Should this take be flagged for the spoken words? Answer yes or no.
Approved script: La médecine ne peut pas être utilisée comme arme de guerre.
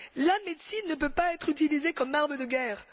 no